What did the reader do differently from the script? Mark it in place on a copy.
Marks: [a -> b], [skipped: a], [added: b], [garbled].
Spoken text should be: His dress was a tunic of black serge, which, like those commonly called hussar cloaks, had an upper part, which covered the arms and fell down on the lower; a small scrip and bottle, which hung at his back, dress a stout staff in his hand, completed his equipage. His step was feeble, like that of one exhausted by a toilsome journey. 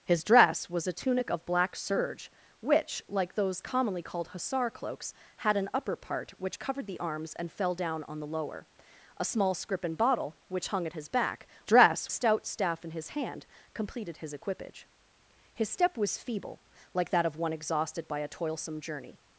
His dress was a tunic of black serge, which, like those commonly called hussar cloaks, had an upper part, which covered the arms and fell down on the lower; a small scrip and bottle, which hung at his back, dress a stout staff in his hand, completed his equipage. His step was feeble, like that of one exhausted by a toilsome journey.